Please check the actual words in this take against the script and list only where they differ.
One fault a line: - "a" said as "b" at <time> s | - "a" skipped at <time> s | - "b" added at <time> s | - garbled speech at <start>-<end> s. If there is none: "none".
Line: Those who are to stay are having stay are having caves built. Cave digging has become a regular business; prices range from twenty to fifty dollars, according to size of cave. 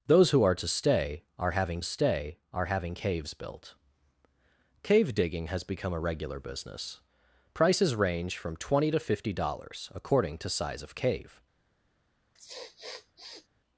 none